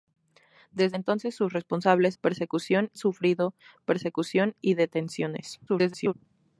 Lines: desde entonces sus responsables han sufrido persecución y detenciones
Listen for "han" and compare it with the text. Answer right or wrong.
wrong